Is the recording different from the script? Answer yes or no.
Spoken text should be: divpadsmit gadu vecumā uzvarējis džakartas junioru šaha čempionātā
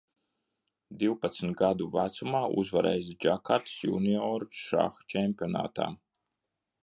no